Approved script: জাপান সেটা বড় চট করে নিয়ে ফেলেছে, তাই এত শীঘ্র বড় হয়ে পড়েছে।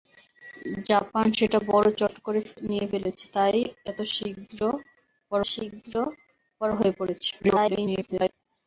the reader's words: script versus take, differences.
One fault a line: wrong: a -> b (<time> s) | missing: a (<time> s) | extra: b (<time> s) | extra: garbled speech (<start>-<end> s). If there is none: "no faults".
extra: শীঘ্র বড় (5.5 s)
extra: garbled speech (7.4-8.3 s)